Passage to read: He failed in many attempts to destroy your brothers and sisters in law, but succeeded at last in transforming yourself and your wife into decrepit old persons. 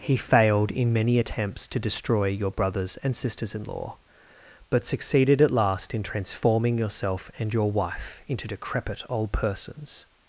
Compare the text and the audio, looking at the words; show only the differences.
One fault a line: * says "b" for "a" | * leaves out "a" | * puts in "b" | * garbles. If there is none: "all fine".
all fine